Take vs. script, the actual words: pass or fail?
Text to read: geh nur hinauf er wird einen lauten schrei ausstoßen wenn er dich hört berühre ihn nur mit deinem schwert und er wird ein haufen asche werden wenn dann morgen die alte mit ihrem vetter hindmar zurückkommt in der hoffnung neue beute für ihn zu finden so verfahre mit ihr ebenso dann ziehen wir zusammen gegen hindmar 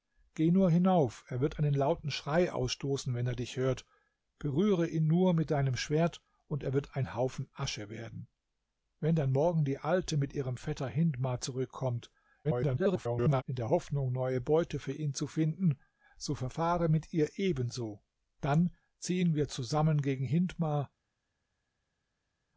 fail